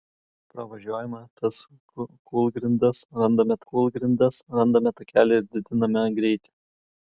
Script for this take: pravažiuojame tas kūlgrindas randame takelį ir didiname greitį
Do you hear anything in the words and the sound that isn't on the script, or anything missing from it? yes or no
yes